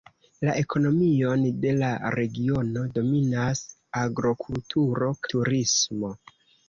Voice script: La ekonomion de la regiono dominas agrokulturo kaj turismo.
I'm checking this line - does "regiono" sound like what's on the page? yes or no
yes